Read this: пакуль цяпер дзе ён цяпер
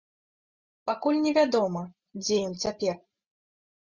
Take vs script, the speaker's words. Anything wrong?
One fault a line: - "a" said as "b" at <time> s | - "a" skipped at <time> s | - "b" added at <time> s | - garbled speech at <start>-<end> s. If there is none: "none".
- "цяпер" said as "невядома" at 1.2 s